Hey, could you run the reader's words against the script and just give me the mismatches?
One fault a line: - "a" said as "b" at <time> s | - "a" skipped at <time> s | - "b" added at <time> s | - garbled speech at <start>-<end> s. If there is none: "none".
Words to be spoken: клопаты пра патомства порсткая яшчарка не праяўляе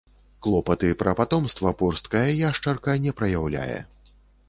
none